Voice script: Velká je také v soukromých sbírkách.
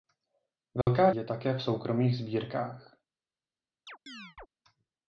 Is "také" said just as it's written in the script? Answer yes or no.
yes